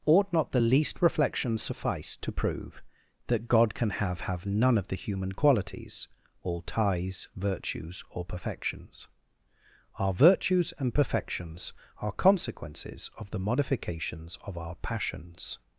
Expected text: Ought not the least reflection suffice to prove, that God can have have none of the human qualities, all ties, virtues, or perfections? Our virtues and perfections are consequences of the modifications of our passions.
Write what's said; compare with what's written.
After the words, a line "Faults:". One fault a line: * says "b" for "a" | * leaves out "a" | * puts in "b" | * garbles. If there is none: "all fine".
Ought not the least reflection suffice to prove, that God can have have none of the human qualities, all ties, virtues, or perfections? Our virtues and perfections are consequences of the modifications of our passions.
Faults:
all fine